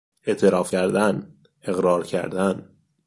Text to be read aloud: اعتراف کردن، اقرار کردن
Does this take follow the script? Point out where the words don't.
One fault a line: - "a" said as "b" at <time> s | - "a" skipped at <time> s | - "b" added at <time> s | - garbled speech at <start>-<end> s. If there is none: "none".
none